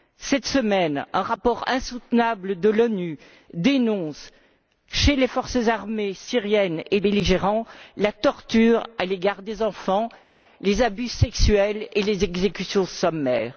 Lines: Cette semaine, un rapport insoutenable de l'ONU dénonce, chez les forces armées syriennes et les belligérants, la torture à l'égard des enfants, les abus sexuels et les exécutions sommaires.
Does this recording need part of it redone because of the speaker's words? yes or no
yes